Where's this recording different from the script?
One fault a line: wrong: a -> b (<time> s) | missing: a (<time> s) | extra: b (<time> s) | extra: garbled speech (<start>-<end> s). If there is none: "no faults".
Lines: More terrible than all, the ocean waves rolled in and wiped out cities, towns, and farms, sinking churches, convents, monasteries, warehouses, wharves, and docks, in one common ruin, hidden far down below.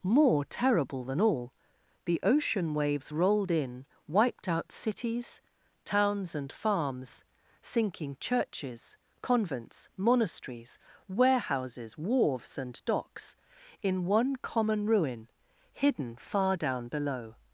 missing: and (3.9 s)